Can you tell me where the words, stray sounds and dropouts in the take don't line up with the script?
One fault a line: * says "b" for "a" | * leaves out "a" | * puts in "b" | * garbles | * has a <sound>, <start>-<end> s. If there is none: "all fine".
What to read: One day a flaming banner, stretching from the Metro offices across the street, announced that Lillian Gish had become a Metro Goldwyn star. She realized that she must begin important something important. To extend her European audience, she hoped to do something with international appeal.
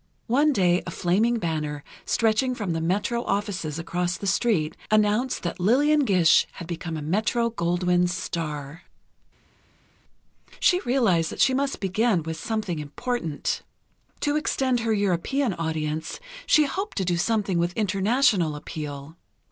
* says "with" for "important"